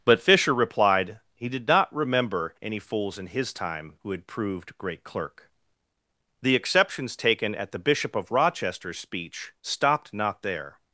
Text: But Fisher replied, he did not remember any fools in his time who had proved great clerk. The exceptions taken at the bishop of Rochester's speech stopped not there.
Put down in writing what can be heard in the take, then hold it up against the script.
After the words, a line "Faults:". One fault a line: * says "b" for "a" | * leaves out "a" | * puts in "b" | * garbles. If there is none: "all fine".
But Fisher replied, he did not remember any fools in his time who had proved great clerk. The exceptions taken at the bishop of Rochester's speech stopped not there.
Faults:
all fine